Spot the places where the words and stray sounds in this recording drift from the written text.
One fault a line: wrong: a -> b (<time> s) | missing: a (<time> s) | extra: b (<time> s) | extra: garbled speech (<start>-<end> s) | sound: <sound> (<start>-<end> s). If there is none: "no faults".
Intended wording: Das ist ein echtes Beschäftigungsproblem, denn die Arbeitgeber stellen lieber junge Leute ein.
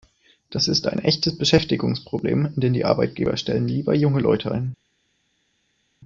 no faults